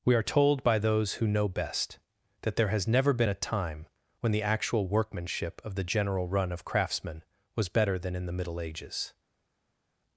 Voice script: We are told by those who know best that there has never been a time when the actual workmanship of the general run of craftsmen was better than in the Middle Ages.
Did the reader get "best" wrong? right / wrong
right